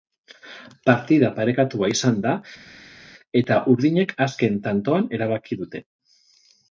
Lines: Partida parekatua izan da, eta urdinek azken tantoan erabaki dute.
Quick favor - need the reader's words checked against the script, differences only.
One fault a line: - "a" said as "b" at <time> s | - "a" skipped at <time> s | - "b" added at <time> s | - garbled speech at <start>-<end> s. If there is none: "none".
none